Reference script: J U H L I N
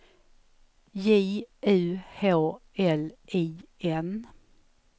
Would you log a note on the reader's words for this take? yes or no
no